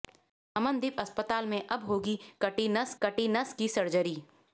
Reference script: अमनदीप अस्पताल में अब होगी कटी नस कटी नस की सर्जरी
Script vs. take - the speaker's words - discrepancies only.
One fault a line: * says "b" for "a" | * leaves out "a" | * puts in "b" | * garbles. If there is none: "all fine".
all fine